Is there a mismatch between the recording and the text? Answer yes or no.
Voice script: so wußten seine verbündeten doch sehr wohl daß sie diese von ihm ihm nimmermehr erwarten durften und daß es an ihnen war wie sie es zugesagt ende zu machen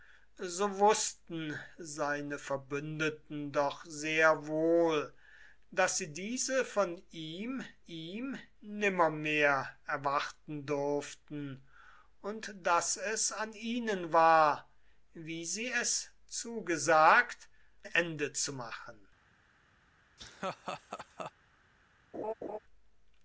no